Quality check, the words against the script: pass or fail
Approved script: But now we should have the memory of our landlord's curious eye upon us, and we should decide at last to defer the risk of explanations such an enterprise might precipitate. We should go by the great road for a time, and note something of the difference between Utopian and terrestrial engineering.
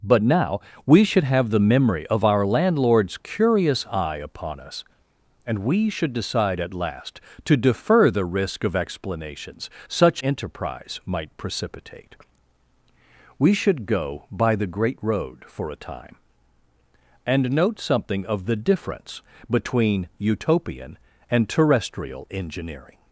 fail